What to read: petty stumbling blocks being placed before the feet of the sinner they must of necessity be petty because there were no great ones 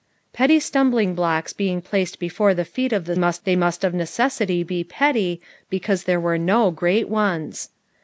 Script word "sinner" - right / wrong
wrong